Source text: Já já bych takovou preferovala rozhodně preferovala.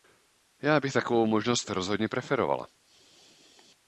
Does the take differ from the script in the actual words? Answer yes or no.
yes